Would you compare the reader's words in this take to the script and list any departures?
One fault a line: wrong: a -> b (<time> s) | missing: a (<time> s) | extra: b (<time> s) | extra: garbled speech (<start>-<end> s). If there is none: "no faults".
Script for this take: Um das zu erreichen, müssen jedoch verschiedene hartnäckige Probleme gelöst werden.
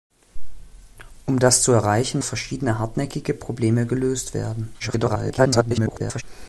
missing: müssen jedoch (2.2 s)
extra: garbled speech (4.8-6.2 s)